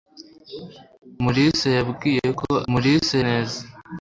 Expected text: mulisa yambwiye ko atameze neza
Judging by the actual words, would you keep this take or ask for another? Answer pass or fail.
fail